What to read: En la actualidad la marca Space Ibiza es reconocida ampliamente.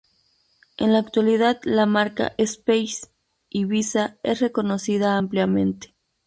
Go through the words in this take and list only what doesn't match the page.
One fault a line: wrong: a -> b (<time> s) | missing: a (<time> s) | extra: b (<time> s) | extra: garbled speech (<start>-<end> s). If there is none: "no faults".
no faults